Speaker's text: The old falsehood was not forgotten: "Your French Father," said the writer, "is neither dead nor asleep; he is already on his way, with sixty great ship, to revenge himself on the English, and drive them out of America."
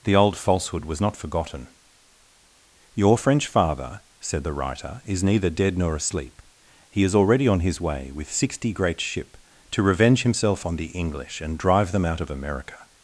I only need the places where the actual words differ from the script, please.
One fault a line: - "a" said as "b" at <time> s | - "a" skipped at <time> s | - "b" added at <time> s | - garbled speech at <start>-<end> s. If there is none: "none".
none